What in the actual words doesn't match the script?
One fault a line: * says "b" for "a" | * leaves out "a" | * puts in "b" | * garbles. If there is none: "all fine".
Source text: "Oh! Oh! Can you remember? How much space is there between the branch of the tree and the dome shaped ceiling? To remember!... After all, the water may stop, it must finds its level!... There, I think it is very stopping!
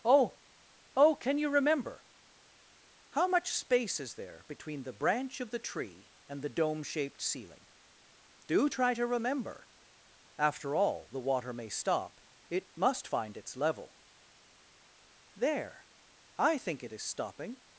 * puts in "Do try"
* says "find" for "finds"
* leaves out "very"